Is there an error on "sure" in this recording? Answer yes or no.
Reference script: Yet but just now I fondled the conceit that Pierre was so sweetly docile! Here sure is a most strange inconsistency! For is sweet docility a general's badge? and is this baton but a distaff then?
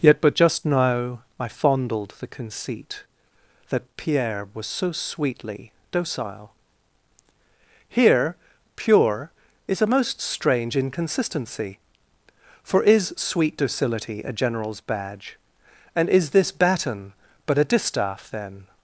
yes